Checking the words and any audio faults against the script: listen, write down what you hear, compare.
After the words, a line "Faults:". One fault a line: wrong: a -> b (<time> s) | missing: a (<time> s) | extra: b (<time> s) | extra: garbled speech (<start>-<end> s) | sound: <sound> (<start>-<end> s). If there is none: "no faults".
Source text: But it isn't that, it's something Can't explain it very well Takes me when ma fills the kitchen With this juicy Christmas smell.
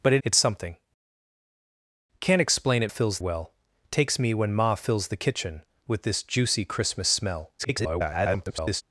But it it's something Can't explain it fills well Takes me when ma fills the kitchen With this juicy Christmas smell. [garbled]
Faults:
missing: isn't that (0.2 s)
wrong: very -> fills (2.9 s)
extra: garbled speech (7.6-8.8 s)